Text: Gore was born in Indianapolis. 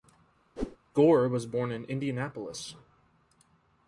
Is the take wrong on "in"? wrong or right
right